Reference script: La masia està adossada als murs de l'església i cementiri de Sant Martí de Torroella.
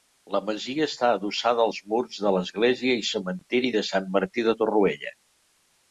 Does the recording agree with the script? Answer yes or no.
yes